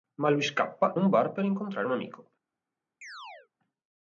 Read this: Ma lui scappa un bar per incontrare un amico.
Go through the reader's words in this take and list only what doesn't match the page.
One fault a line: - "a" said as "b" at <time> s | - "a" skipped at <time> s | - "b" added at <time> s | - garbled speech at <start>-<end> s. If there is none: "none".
none